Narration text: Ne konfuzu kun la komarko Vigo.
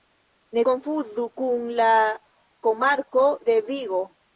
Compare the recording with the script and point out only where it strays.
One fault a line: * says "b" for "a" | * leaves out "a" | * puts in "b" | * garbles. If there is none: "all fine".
* puts in "de"